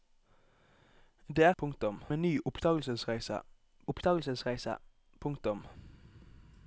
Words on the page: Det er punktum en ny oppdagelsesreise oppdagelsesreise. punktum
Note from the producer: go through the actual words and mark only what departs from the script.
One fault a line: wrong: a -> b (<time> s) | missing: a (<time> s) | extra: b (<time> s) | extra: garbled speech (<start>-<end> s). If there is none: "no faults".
no faults